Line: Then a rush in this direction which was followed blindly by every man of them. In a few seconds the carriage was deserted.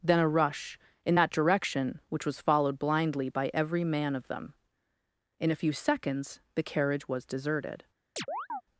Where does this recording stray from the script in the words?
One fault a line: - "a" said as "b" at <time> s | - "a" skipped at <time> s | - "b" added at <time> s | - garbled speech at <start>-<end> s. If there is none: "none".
- "this" said as "that" at 1.1 s